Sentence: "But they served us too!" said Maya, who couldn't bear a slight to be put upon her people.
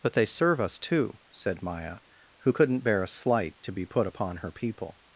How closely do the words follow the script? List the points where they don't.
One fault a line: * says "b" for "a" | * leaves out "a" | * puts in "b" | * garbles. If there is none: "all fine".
* says "serve" for "served"